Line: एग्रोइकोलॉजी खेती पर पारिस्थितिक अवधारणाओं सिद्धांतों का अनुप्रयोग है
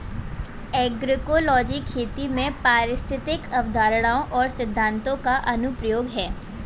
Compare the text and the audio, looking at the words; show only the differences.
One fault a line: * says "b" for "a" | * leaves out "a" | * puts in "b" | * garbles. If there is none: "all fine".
* says "में" for "पर"
* puts in "और"